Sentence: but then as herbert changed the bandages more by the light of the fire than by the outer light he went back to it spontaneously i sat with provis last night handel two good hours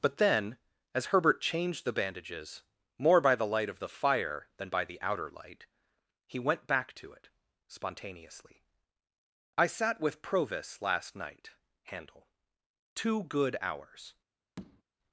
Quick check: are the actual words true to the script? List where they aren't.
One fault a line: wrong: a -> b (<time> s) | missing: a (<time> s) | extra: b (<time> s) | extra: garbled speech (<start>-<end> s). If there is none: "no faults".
no faults